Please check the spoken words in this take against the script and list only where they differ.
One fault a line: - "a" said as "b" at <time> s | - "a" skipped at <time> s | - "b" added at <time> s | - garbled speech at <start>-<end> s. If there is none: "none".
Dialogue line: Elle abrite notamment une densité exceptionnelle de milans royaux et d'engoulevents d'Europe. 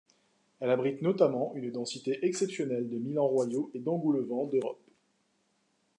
none